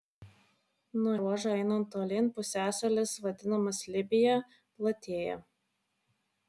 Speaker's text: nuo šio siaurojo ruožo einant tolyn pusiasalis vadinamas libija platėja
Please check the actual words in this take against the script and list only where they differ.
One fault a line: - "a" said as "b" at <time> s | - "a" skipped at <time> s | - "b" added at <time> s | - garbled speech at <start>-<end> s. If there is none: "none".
- "šio siaurojo" skipped at 1.1 s